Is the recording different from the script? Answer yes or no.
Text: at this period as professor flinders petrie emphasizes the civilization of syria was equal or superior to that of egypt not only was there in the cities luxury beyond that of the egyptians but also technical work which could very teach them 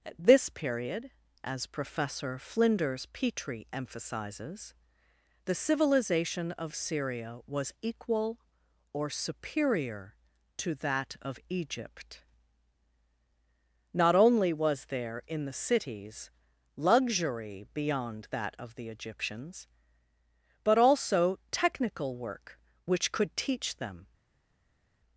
yes